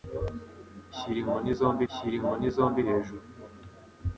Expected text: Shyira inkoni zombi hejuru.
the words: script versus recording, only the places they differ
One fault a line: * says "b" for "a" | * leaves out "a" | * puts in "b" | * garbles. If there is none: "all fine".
* puts in "shyira inkoni zombi"